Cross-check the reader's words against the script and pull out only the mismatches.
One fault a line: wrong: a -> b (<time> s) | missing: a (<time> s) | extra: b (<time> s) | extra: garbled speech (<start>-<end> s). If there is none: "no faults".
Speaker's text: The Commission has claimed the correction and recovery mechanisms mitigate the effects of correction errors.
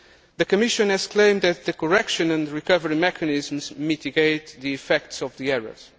extra: that (1.4 s)
wrong: correction -> the (5.4 s)